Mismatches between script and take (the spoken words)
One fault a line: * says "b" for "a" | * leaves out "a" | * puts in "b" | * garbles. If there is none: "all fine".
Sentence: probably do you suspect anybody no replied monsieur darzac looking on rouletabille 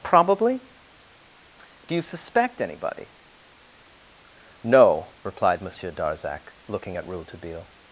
* says "at" for "on"